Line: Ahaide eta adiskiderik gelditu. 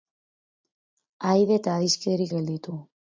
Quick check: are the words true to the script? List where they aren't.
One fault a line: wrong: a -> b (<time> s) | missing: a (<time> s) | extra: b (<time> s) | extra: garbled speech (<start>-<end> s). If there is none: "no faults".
no faults